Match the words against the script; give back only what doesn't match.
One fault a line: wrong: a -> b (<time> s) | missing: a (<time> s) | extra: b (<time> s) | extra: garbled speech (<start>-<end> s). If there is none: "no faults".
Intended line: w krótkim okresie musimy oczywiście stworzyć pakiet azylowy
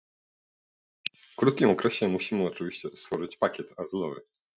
no faults